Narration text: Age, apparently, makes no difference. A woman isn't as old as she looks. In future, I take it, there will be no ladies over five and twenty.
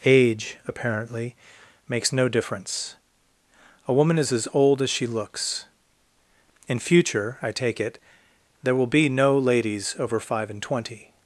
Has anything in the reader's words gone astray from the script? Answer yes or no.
yes